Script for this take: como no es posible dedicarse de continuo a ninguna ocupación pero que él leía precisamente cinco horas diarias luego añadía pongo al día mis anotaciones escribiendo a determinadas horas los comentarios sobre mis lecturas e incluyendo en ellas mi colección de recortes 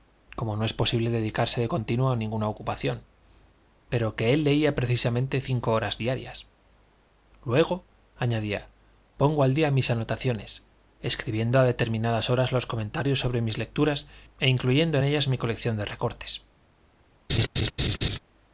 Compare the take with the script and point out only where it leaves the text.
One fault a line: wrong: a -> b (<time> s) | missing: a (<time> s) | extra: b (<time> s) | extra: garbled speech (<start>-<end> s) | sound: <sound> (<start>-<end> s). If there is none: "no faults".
sound: laugh (17.3-18.2 s)